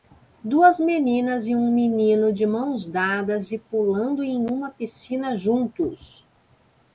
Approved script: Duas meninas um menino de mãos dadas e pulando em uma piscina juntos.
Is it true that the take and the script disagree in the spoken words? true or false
true